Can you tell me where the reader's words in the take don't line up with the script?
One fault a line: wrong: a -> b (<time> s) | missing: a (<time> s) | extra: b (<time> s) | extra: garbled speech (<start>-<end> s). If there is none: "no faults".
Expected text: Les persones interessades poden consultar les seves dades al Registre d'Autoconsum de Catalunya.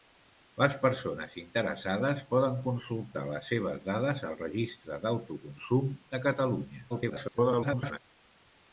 extra: garbled speech (6.9-8.0 s)